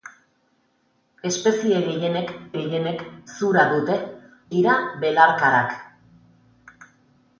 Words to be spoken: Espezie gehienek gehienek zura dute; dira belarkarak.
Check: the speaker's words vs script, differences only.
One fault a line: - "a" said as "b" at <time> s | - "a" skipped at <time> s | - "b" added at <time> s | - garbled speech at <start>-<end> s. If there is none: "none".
none